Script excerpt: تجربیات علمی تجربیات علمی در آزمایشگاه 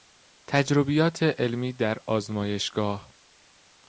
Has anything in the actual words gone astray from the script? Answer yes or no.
yes